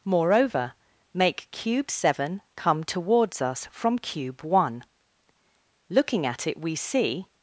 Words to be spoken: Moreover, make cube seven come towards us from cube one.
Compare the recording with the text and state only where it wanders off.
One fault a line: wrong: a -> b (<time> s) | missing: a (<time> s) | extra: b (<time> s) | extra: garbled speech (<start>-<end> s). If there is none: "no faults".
extra: Looking at it we see (5.9 s)